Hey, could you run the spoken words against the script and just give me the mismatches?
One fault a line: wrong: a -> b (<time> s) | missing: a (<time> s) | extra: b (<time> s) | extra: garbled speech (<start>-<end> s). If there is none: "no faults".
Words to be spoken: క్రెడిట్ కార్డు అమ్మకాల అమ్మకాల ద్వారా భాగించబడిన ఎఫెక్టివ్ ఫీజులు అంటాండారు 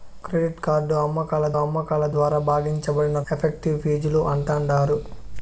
no faults